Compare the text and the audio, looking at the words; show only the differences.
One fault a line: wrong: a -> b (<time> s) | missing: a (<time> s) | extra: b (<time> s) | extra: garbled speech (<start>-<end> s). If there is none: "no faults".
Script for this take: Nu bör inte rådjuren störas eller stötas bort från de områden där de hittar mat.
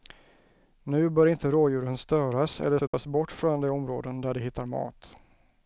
no faults